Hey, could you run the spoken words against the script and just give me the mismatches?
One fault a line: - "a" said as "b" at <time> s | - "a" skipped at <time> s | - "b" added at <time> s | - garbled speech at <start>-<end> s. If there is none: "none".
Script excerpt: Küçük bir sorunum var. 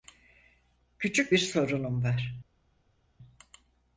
none